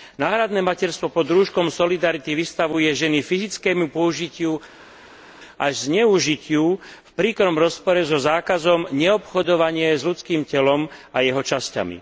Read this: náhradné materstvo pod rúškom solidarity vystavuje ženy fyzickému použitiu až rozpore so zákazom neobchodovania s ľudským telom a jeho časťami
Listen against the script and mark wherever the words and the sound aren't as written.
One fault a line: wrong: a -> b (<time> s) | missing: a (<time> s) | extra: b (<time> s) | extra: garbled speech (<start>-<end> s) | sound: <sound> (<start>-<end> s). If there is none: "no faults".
extra: zneužitiu v príkrom (5.9 s)